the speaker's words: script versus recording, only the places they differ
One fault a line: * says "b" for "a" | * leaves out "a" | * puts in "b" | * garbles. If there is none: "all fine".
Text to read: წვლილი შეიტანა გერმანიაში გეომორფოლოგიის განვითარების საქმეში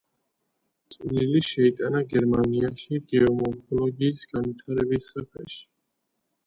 all fine